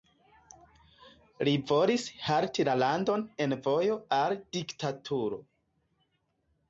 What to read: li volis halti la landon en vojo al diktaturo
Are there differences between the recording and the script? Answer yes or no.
no